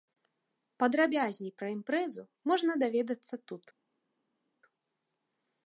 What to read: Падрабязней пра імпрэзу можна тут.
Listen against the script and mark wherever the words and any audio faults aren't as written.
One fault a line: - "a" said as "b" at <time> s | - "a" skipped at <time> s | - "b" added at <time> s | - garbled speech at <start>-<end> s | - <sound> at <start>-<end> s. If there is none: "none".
- "даведацца" added at 2.9 s